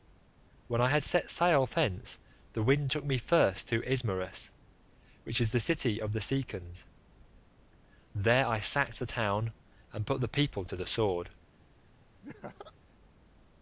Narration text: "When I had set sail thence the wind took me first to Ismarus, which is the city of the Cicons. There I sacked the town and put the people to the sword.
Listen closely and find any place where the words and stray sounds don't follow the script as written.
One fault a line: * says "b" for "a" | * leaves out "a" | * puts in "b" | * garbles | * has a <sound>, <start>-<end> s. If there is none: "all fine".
* has a laugh, 12.2-12.7 s